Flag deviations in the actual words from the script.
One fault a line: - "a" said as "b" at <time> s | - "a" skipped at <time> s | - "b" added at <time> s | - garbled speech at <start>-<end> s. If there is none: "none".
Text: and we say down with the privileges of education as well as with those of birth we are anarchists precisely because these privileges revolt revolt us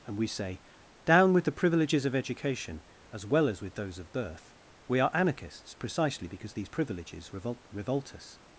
none